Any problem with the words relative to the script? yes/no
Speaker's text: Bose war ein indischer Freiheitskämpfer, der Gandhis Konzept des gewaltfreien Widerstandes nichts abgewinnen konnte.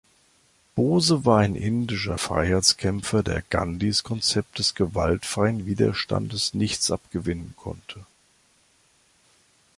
no